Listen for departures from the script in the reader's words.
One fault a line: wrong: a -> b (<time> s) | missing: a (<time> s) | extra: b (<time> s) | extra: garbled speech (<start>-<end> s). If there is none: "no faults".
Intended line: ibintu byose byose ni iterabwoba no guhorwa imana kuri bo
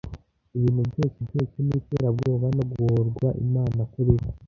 no faults